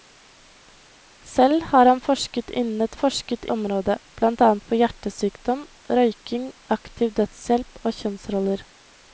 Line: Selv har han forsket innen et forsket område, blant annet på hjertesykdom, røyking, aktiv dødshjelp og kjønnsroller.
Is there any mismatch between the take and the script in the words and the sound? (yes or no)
no